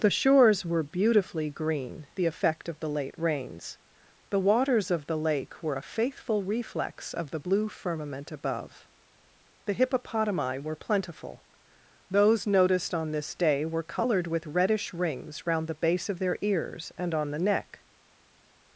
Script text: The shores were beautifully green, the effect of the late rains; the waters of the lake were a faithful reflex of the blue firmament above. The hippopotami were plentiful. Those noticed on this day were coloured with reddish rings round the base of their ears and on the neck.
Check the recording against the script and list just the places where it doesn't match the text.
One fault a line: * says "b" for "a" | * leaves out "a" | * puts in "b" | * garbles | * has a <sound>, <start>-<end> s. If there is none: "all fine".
all fine